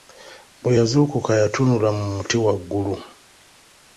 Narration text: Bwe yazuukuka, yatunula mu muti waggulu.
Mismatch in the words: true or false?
false